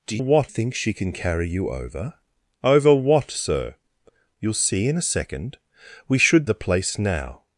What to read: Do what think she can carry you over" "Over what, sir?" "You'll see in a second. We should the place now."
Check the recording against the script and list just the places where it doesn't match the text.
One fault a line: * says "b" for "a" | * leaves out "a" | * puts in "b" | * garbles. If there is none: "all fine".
all fine